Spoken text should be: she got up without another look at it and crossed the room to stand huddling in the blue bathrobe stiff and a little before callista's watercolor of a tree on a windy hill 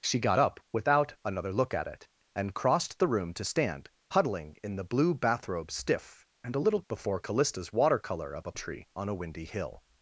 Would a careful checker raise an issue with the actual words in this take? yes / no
no